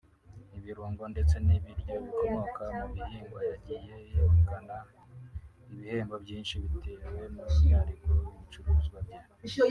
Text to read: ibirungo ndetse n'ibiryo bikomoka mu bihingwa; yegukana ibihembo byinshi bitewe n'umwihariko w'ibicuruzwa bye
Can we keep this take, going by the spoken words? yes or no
no